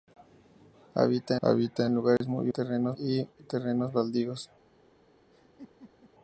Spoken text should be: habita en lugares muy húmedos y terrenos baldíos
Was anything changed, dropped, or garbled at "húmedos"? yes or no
yes